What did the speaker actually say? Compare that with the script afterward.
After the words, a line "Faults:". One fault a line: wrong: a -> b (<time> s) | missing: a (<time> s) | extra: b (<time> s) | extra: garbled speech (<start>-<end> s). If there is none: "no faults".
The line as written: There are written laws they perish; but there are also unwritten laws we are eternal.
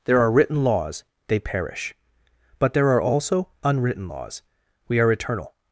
There are written laws they perish; but there are also unwritten laws we are eternal.
Faults:
no faults